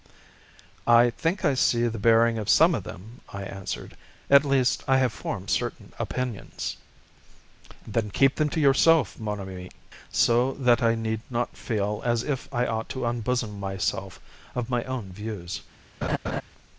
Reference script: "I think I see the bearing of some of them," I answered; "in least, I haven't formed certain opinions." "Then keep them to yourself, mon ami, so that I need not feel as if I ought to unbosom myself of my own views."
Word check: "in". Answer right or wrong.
wrong